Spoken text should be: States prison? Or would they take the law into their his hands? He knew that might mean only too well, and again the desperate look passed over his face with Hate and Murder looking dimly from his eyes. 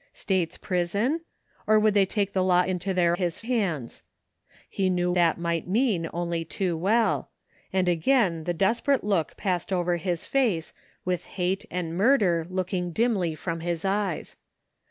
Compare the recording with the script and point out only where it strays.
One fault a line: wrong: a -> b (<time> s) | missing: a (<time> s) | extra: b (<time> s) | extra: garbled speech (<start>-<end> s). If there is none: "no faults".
no faults